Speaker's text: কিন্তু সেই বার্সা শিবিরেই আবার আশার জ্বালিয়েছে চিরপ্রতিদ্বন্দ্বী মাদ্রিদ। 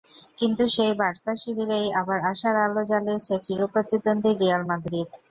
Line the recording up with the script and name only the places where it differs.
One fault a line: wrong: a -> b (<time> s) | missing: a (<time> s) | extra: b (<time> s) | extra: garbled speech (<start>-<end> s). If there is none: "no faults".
extra: আলো (2.6 s)
extra: রিয়াল (4.3 s)